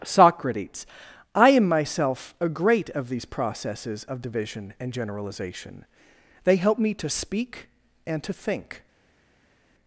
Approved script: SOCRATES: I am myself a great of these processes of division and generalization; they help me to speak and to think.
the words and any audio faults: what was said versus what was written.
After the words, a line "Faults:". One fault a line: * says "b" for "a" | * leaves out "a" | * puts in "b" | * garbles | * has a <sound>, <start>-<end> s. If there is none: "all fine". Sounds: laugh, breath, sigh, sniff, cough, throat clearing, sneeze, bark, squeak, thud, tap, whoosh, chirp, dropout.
SOCRATES: I am myself a great of these processes of division and generalization; they help me to speak and to think.
Faults:
all fine